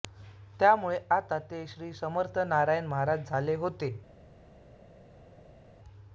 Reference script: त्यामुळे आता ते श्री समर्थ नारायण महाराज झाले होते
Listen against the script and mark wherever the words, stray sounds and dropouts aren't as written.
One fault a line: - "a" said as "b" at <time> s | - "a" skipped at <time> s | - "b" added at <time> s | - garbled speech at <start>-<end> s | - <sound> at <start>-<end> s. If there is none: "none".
none